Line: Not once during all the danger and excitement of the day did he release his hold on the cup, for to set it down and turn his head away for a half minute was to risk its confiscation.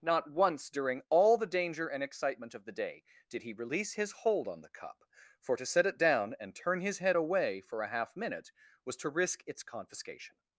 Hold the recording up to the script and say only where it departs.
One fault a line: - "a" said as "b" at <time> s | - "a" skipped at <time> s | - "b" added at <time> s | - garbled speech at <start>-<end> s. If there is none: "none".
none